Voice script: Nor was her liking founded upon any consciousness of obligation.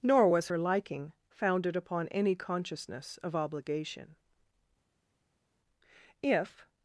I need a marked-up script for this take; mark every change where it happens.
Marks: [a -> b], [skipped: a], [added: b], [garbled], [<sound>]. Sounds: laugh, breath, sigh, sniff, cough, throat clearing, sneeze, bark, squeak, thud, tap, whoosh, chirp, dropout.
Nor was her liking founded upon any consciousness of obligation. [added: If]